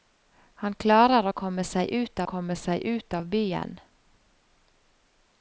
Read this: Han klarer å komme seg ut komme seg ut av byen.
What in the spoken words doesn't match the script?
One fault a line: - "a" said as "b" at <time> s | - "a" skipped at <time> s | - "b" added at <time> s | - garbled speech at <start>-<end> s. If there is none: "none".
none